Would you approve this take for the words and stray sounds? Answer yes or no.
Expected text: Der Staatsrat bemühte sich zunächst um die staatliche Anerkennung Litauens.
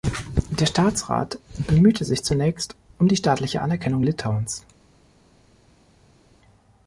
yes